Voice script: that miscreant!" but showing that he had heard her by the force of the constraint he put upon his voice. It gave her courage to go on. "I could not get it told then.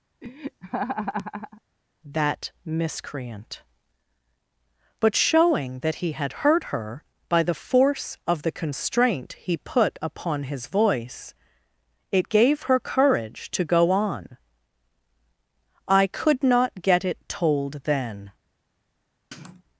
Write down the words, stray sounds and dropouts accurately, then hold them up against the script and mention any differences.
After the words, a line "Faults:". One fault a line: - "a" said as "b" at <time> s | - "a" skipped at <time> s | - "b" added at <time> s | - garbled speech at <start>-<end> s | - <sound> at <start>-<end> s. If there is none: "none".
that miscreant!" but showing that he had heard her by the force of the constraint he put upon his voice. It gave her courage to go on. "I could not get it told then.
Faults:
- laugh at 0.2-1.6 s
- sniff at 19.3-19.6 s